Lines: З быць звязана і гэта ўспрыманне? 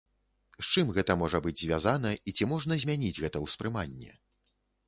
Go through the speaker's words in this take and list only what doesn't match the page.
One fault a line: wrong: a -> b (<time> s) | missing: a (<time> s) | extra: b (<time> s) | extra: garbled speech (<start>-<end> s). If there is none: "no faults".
extra: чым гэта можа (0.7 s)
extra: ці можна змяніць (2.4 s)